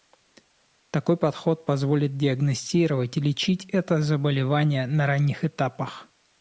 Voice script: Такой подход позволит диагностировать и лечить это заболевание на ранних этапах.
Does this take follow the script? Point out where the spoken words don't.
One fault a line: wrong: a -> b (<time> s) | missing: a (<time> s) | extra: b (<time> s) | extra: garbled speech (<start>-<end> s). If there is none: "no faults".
no faults